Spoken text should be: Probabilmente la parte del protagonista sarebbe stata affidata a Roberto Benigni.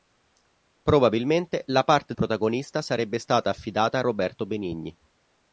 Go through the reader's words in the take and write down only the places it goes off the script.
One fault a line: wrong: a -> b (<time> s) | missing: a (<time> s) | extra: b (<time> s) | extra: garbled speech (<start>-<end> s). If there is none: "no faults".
missing: del (2.1 s)